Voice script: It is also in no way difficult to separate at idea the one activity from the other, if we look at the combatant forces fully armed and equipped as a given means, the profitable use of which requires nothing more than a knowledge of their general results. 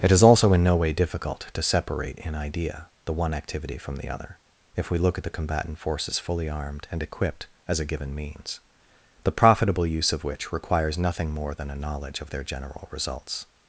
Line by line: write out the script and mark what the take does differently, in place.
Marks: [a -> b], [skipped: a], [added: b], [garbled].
It is also in no way difficult to separate [at -> in] idea the one activity from the other, if we look at the combatant forces fully armed and equipped as a given means, the profitable use of which requires nothing more than a knowledge of their general results.